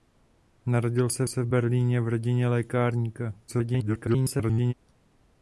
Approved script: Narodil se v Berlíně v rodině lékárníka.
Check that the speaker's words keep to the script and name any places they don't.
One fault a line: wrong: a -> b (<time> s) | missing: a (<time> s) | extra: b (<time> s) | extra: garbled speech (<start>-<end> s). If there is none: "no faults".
extra: se (1.3 s)
extra: garbled speech (3.5-4.7 s)